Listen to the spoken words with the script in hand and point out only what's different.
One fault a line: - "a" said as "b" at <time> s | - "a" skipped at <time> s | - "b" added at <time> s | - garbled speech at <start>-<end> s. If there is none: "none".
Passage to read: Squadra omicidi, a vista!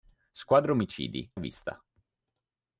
none